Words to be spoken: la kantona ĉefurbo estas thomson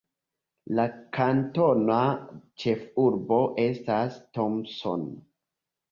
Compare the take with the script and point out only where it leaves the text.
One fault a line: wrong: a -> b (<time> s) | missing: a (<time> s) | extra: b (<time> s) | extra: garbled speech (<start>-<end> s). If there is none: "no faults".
no faults